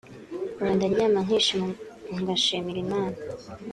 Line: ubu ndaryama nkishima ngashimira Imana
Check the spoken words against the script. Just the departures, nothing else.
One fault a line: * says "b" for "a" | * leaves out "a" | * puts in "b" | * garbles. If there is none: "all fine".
all fine